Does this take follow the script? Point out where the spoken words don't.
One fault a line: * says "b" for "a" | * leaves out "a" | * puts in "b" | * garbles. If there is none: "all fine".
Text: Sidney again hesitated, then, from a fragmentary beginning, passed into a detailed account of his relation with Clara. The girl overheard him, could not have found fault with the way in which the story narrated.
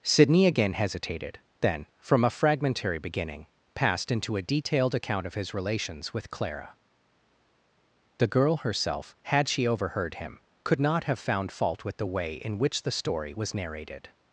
* says "relations" for "relation"
* puts in "herself had she"
* puts in "was"